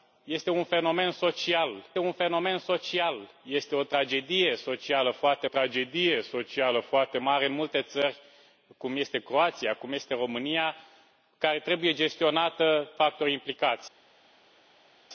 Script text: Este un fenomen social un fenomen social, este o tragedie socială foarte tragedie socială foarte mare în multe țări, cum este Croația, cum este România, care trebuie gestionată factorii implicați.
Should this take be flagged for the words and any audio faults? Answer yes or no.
no